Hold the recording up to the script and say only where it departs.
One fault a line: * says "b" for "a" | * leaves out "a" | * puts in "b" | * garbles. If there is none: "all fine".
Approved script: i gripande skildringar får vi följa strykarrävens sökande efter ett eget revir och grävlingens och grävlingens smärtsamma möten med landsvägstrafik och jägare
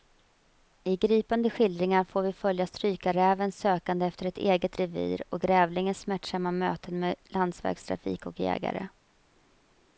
* leaves out "och grävlingens"